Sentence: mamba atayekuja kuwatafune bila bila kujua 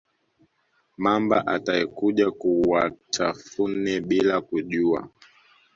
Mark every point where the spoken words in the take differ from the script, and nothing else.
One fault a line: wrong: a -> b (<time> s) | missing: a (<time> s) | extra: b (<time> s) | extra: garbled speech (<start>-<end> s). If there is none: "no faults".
missing: bila (4.4 s)